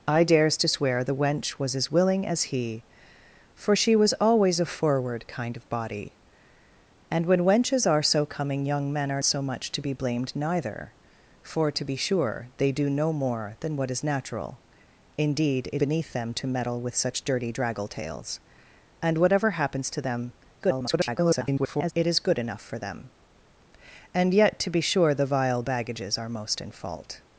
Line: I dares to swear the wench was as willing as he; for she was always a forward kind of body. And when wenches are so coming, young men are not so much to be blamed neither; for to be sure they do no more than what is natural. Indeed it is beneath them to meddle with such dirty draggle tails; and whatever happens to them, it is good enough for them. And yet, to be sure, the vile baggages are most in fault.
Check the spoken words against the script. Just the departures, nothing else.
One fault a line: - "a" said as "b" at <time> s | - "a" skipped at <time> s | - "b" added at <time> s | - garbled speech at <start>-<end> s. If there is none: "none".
- "not" skipped at 9.2 s
- "is" skipped at 15.8 s
- garbled speech at 20.6-21.9 s